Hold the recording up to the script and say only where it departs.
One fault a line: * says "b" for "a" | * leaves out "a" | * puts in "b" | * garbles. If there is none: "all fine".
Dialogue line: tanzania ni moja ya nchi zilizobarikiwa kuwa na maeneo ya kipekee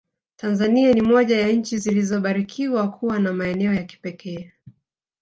all fine